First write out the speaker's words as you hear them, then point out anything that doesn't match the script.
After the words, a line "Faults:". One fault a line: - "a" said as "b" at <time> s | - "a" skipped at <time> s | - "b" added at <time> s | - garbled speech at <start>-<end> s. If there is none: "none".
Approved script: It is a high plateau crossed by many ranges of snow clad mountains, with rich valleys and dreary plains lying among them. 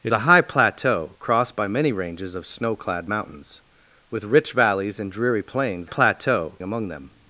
It a high plateau crossed by many ranges of snow clad mountains, with rich valleys and dreary plains plateau among them.
Faults:
- "is" skipped at 0.1 s
- "lying" said as "plateau" at 5.8 s